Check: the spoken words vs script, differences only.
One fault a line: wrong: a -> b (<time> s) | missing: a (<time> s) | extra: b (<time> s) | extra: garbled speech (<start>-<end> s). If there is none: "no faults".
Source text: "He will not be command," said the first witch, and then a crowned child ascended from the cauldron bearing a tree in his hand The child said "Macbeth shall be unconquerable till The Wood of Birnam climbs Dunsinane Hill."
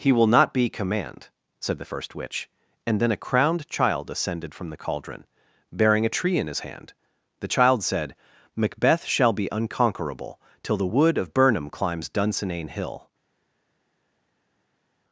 no faults